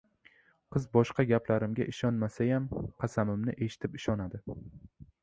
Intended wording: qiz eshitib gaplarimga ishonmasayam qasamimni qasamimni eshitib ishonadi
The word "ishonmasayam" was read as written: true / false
true